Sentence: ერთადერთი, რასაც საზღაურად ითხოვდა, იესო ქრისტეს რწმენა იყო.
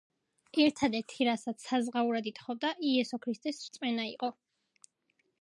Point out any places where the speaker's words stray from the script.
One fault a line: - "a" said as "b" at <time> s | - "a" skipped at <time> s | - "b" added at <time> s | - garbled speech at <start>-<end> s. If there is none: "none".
none